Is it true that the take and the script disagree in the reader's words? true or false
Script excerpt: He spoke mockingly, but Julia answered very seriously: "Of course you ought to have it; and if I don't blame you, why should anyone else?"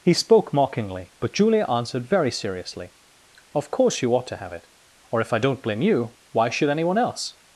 true